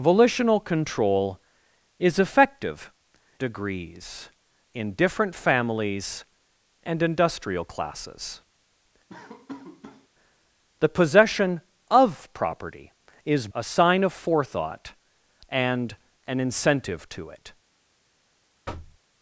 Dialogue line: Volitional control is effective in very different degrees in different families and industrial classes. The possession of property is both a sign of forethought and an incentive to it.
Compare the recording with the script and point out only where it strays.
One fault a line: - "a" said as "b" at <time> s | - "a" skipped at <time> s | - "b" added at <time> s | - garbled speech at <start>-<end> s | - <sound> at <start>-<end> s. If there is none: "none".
- "in very different" skipped at 2.9 s
- laugh at 9.1-10.1 s
- "both" skipped at 13.5 s
- thud at 18.7-19.0 s